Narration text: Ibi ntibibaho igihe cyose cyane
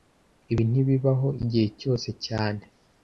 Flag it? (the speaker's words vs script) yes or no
no